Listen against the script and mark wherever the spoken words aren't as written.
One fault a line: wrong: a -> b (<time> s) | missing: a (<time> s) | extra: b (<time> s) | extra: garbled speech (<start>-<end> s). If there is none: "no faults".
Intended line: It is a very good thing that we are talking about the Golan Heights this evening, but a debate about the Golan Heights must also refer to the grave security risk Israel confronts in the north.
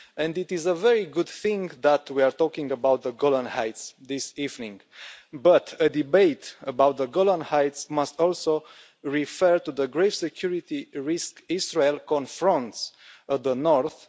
no faults